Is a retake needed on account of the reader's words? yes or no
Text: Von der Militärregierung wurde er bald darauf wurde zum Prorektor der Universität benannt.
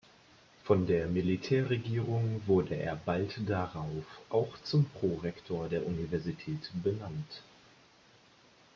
yes